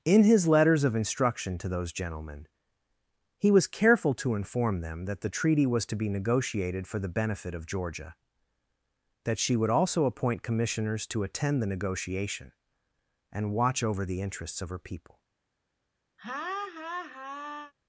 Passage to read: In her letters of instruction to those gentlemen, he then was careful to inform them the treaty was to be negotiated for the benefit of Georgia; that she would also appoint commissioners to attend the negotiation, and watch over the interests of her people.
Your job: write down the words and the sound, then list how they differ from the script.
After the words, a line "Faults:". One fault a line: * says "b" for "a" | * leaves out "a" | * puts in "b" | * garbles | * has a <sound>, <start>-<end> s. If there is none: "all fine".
In his letters of instruction to those gentlemen, he was careful to inform them that the treaty was to be negotiated for the benefit of Georgia; that she would also appoint commissioners to attend the negotiation, and watch over the interests of her people.
Faults:
* says "his" for "her"
* leaves out "then"
* puts in "that"
* has a laugh, 16.2-17.7 s